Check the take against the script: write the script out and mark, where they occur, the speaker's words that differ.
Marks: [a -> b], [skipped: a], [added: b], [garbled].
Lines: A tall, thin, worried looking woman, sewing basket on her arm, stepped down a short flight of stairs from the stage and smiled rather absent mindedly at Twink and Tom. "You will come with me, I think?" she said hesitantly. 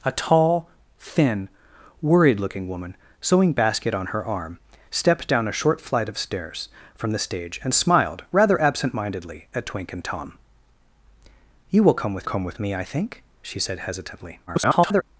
A tall, thin, worried looking woman, sewing basket on her arm, stepped down a short flight of stairs from the stage and smiled rather absent mindedly at Twink and Tom. "You will come with [added: come with] me, I think?" she said hesitantly. [garbled]